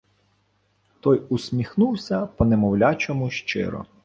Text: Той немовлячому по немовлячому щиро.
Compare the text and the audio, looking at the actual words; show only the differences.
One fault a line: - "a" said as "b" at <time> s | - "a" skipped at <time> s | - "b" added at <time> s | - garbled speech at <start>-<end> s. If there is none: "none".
- "немовлячому" said as "усміхнувся" at 1.3 s